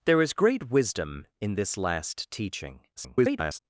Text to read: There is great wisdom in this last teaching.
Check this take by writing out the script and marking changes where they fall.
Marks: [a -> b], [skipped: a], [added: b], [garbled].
There is great wisdom in this last teaching. [garbled]